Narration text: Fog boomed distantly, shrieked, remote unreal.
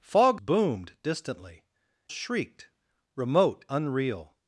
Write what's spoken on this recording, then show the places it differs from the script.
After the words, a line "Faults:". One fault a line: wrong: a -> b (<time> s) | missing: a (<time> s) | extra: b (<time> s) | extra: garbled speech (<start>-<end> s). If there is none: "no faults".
Fog boomed distantly, shrieked, remote unreal.
Faults:
no faults